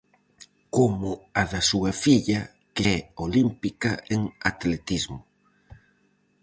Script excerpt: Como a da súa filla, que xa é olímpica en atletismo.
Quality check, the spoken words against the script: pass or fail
fail